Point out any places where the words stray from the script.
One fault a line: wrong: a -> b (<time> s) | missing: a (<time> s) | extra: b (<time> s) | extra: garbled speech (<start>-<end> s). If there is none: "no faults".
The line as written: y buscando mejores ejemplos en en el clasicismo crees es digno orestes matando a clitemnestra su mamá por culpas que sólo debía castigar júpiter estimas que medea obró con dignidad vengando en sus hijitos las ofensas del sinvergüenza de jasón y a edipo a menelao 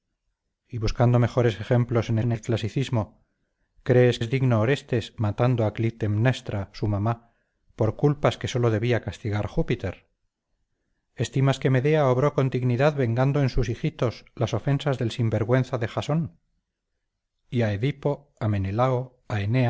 no faults